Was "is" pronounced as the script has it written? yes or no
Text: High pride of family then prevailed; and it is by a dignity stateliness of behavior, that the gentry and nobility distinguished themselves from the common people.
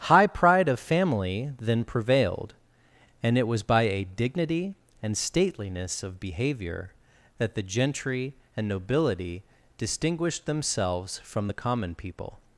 no